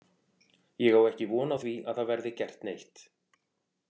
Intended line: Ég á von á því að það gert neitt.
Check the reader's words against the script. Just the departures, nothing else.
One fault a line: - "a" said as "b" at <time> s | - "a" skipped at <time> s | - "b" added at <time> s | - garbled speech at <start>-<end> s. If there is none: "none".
- "ekki" added at 1.1 s
- "verði" added at 2.1 s